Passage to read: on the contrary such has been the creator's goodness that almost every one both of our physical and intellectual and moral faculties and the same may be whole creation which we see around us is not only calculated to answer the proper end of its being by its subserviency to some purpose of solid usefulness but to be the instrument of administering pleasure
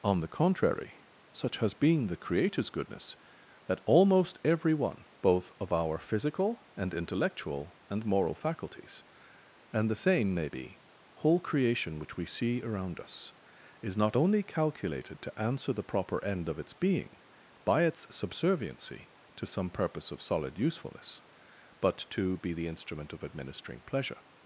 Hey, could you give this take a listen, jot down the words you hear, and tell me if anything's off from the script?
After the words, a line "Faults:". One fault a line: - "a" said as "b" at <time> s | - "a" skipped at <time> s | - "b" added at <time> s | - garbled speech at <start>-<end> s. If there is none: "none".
on the contrary such has been the creator's goodness that almost every one both of our physical and intellectual and moral faculties and the same may be whole creation which we see around us is not only calculated to answer the proper end of its being by its subserviency to some purpose of solid usefulness but to be the instrument of administering pleasure
Faults:
none